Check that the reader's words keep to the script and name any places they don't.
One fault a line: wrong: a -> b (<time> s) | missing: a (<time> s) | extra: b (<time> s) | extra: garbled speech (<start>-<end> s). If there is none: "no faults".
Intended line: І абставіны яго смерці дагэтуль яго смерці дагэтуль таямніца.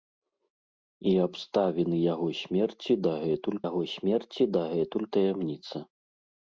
no faults